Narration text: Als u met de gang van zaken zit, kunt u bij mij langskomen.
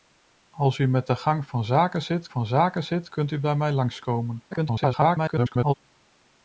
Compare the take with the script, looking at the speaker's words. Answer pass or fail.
fail